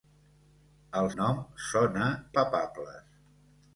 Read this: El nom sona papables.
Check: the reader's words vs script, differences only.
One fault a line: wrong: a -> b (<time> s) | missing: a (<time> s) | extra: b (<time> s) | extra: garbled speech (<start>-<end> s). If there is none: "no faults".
no faults